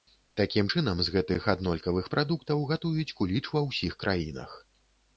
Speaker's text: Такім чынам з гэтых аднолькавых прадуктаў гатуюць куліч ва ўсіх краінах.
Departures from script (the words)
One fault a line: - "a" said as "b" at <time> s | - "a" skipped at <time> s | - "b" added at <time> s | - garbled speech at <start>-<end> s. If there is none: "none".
none